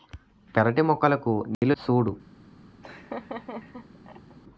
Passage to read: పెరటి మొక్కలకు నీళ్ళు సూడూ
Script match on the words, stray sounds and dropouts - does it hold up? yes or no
no